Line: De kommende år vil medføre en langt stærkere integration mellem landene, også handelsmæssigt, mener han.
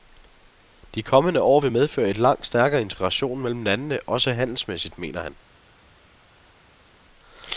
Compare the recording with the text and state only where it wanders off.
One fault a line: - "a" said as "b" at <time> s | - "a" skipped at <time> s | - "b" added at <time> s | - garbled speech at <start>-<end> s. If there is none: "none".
none